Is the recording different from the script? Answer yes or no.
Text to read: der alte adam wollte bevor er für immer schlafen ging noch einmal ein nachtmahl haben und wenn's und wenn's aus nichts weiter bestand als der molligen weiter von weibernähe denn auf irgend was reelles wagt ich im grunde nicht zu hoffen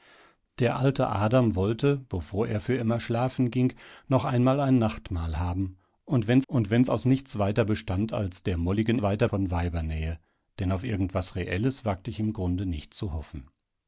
no